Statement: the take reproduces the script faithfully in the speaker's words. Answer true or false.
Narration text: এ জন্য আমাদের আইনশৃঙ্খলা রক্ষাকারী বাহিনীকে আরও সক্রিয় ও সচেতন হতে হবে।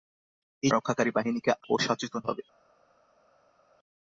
false